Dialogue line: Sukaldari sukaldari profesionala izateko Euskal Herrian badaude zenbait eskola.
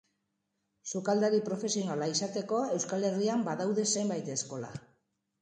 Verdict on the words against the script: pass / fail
fail